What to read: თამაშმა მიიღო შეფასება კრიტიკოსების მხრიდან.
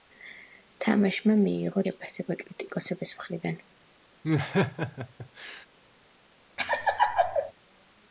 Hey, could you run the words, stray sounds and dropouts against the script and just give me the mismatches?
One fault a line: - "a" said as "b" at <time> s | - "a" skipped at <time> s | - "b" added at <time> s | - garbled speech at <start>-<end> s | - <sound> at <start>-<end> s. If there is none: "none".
- laugh at 4.2-5.7 s
- laugh at 6.6-7.5 s